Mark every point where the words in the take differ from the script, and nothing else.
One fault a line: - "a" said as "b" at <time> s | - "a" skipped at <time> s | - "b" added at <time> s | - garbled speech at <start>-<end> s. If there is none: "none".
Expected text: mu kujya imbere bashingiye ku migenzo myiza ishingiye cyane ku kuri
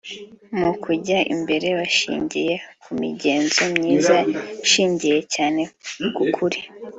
none